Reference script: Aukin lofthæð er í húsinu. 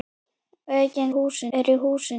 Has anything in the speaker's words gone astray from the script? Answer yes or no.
yes